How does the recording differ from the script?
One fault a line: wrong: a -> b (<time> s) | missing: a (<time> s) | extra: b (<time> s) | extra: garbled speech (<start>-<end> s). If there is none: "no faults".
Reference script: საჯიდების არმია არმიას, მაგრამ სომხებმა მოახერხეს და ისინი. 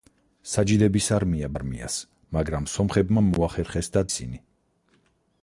no faults